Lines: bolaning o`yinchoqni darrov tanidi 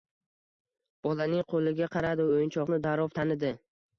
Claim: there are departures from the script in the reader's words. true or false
true